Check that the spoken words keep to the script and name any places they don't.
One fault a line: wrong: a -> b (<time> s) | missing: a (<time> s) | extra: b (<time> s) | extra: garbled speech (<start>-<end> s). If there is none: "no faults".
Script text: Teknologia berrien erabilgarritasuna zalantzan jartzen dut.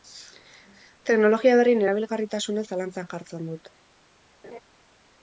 no faults